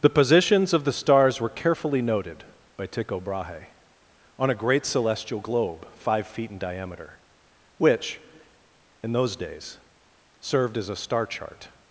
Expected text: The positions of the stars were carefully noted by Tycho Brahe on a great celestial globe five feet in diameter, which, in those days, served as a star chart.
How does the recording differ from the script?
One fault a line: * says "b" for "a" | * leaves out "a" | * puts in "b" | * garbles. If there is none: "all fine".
all fine